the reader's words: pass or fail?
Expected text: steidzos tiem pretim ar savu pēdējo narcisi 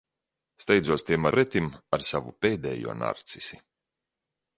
pass